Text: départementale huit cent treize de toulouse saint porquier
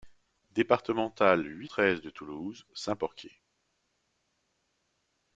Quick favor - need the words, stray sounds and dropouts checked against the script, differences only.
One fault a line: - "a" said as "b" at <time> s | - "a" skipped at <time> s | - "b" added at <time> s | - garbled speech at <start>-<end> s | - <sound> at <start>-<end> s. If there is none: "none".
- "cent" skipped at 1.7 s